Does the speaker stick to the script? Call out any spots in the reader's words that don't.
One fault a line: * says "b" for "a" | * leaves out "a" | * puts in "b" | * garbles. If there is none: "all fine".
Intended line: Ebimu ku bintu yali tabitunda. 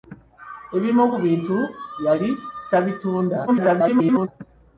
* garbles